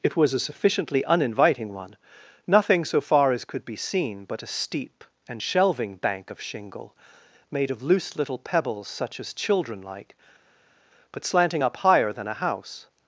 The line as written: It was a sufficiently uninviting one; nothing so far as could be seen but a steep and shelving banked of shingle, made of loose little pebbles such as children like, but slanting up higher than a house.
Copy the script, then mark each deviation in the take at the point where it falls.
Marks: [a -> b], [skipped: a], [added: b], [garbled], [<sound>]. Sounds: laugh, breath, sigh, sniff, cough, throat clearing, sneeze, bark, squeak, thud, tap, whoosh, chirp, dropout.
It was a sufficiently uninviting one; nothing so far as could be seen but a steep and shelving [banked -> bank] of shingle, made of loose little pebbles such as children like, but slanting up higher than a house.